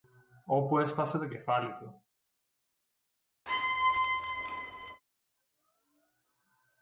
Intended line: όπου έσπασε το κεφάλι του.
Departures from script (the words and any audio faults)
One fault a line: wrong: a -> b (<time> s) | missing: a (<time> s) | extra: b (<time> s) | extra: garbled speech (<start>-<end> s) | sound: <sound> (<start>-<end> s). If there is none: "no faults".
sound: squeak (3.5-5.0 s)